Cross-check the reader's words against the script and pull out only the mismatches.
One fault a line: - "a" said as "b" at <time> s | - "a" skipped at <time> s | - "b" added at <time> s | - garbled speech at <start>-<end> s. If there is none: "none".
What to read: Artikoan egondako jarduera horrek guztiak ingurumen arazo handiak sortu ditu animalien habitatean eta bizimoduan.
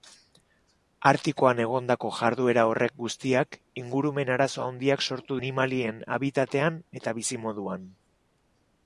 - "ditu" skipped at 5.4 s